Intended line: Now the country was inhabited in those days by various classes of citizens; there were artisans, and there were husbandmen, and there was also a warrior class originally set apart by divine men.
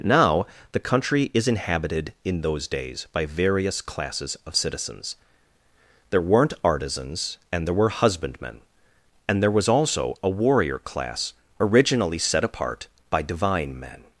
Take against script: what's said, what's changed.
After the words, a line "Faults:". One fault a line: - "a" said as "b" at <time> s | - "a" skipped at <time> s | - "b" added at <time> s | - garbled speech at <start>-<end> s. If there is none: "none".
Now the country is inhabited in those days by various classes of citizens; there weren't artisans, and there were husbandmen, and there was also a warrior class originally set apart by divine men.
Faults:
- "was" said as "is" at 1.3 s
- "were" said as "weren't" at 6.2 s